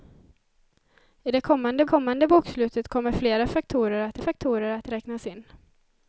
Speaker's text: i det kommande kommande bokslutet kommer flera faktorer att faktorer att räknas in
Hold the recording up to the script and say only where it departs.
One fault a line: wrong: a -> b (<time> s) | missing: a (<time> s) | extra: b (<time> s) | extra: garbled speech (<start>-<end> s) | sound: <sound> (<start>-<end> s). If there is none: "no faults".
no faults